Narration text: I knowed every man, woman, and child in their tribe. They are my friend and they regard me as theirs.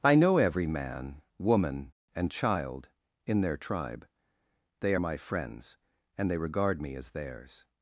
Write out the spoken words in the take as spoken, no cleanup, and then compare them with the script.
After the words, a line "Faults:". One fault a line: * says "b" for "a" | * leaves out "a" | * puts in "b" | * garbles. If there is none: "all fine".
I know every man, woman, and child in their tribe. They are my friends and they regard me as theirs.
Faults:
* says "know" for "knowed"
* says "friends" for "friend"